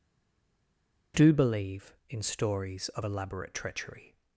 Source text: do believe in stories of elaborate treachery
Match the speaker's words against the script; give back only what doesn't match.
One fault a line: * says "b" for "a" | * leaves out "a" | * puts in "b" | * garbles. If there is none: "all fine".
all fine